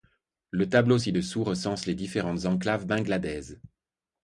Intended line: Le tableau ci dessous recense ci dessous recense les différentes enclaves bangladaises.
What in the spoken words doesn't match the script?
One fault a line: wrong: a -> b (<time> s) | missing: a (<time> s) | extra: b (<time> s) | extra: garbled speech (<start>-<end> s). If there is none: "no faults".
missing: ci dessous recense (1.9 s)